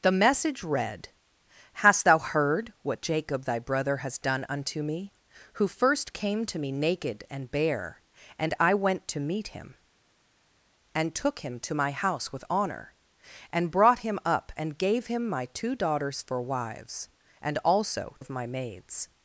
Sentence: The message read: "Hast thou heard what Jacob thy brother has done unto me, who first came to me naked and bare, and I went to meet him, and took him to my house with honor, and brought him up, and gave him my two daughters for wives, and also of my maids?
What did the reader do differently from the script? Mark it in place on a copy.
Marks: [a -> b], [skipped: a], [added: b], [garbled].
The message read: "Hast thou heard what Jacob thy brother has done unto me, who first came to me naked and bare, and I went to meet him, and took him to my house with honor, and brought him up, and gave him my two daughters for wives, and also of my maids?